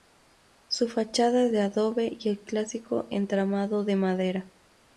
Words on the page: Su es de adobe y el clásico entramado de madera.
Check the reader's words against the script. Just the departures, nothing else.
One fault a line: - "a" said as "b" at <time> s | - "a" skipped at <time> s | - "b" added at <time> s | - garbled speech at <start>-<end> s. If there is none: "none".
- "fachada" added at 0.9 s